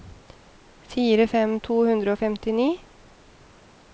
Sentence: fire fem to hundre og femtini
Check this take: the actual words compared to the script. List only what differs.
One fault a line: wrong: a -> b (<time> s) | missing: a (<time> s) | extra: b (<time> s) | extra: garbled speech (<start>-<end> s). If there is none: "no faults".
no faults